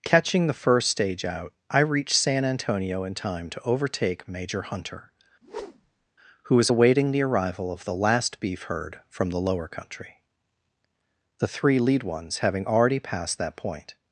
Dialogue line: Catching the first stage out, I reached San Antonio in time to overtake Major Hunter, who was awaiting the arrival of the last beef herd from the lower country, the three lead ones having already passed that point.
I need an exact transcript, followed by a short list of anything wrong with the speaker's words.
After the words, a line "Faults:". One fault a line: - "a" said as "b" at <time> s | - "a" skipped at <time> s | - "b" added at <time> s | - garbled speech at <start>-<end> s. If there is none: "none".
Catching the first stage out, I reached San Antonio in time to overtake Major Hunter, who was awaiting the arrival of the last beef herd from the lower country, the three lead ones having already passed that point.
Faults:
none